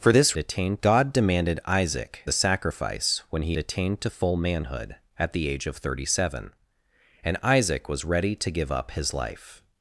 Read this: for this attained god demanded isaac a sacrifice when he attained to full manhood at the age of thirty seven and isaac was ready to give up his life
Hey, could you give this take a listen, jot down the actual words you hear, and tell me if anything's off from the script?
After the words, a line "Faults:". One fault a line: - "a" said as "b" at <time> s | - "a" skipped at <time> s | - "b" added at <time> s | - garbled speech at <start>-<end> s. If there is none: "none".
for this attained god demanded isaac a sacrifice when he attained to full manhood at the age of thirty seven and isaac was ready to give up his life
Faults:
none